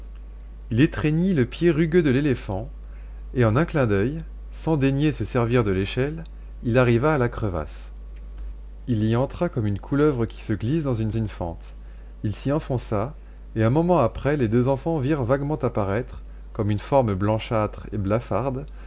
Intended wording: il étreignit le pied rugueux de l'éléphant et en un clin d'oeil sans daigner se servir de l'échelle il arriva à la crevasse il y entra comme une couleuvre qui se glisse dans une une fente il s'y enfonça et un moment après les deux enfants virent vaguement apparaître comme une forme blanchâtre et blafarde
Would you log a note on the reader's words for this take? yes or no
no